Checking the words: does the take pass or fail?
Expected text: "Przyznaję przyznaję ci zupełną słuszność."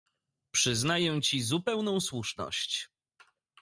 fail